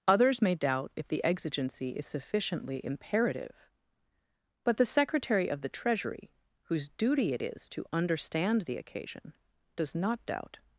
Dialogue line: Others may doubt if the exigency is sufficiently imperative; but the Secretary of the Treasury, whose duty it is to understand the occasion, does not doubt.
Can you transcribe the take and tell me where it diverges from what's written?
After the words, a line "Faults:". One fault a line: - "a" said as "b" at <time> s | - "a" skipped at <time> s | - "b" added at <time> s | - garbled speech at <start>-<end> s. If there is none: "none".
Others may doubt if the exigency is sufficiently imperative; but the Secretary of the Treasury, whose duty it is to understand the occasion, does not doubt.
Faults:
none